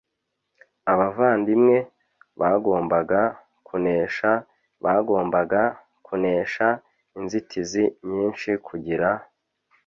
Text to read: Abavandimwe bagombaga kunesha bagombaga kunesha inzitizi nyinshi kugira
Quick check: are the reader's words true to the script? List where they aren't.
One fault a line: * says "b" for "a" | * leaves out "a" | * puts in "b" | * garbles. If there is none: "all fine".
all fine